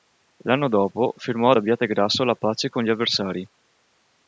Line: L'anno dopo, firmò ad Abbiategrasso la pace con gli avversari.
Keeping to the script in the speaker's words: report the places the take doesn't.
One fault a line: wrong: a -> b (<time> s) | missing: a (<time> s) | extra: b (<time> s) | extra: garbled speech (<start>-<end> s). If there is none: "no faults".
no faults